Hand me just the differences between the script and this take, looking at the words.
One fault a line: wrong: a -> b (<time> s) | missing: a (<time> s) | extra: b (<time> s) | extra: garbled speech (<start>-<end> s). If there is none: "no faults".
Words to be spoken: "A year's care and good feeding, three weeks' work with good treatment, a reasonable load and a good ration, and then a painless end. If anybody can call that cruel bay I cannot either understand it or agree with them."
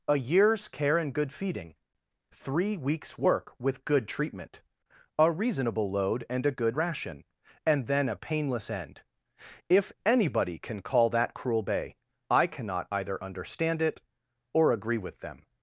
no faults